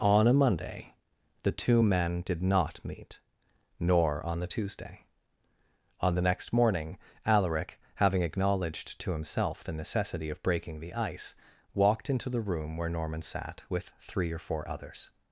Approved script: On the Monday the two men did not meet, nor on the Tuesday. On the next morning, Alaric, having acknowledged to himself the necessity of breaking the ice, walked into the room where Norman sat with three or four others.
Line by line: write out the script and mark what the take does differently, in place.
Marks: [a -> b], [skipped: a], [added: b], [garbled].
On [the -> a] Monday the two men did not meet, nor on the Tuesday. On the next morning, Alaric, having acknowledged to himself the necessity of breaking the ice, walked into the room where Norman sat with three or four others.